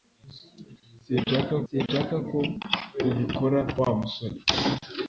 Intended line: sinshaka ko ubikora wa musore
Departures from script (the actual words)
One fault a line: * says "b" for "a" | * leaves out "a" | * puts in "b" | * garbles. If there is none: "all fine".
* puts in "sinshaka"